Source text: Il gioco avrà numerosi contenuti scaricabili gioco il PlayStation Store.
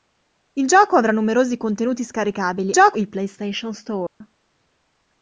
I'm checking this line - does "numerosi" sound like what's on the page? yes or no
yes